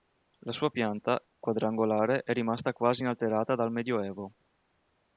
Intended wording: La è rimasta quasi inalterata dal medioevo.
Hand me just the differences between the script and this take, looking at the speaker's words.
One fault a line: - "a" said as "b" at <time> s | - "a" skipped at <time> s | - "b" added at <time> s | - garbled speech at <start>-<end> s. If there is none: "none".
- "sua pianta quadrangolare" added at 0.5 s